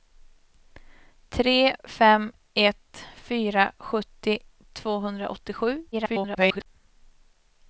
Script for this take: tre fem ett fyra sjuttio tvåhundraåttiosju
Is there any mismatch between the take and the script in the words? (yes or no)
yes